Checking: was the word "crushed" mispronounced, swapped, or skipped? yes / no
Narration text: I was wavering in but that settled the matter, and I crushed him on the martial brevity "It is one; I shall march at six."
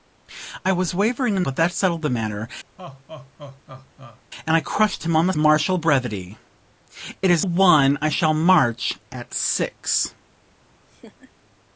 no